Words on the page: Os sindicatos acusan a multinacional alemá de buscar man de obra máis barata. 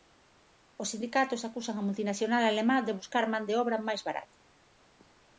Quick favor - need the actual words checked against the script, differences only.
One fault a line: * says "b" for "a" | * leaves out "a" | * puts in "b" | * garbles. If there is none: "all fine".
all fine